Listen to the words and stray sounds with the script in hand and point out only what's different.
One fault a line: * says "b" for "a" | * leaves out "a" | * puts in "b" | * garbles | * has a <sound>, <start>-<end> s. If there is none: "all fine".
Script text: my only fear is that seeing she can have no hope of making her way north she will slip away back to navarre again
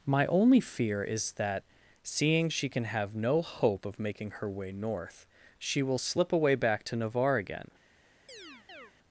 * has a chirp, 8.3-8.9 s